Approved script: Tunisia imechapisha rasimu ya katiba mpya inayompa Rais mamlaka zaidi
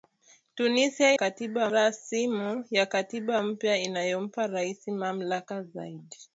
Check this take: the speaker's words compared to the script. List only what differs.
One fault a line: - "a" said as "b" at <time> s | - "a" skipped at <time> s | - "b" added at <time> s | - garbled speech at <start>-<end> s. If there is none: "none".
- "imechapisha" said as "katiba" at 1.1 s